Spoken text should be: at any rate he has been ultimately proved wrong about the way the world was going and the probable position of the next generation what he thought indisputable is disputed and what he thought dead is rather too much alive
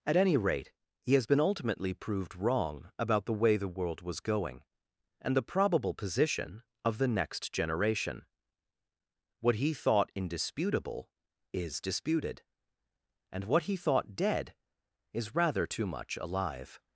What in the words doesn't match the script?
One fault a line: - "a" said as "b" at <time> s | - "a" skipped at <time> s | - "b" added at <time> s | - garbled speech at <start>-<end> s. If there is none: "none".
none